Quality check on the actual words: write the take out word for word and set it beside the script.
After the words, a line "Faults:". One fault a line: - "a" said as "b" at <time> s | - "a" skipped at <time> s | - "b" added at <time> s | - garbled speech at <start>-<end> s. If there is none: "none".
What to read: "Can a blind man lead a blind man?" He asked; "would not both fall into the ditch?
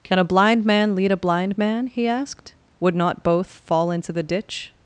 "Can a blind man lead a blind man?" He asked; "would not both fall into the ditch?
Faults:
none